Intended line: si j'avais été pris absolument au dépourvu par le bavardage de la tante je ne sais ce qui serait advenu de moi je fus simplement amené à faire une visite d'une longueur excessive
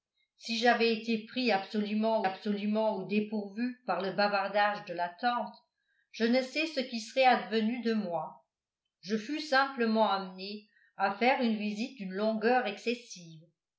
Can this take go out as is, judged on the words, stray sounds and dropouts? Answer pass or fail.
fail